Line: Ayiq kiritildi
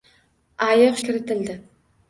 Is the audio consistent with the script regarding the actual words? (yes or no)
yes